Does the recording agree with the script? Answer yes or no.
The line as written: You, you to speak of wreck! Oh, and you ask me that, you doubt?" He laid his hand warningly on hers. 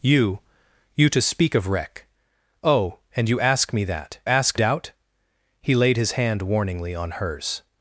no